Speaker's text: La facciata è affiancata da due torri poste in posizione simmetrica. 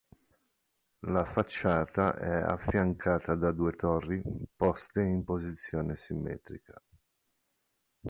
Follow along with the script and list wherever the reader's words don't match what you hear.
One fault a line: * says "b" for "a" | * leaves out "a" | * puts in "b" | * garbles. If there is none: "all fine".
all fine